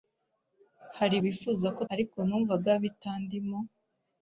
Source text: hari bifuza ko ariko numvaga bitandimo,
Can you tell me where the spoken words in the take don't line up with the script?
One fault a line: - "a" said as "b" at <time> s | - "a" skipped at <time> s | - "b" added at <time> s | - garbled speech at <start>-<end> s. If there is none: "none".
none